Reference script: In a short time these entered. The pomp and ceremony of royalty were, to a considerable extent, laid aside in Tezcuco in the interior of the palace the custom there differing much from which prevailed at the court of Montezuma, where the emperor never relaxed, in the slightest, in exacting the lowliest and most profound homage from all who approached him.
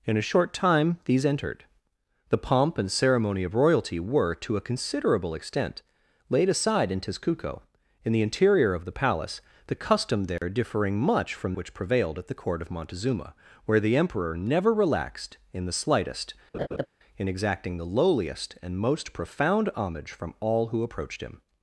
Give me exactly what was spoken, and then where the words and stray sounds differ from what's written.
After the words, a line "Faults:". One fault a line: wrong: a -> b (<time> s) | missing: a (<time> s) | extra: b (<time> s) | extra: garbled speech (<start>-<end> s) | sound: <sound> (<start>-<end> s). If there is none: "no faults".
In a short time these entered. The pomp and ceremony of royalty were, to a considerable extent, laid aside in Tezcuco in the interior of the palace the custom there differing much from which prevailed at the court of Montezuma, where the emperor never relaxed, in the slightest, in exacting the lowliest and most profound homage from all who approached him.
Faults:
sound: dropout (10.4-10.4 s)
sound: laugh (16.5-16.9 s)